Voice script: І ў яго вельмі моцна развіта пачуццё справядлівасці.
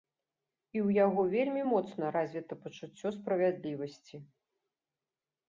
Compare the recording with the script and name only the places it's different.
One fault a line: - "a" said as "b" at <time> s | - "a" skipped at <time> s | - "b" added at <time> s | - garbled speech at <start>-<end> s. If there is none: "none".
none